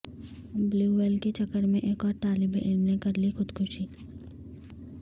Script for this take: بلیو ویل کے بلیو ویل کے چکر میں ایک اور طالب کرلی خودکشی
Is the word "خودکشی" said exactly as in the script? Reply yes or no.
yes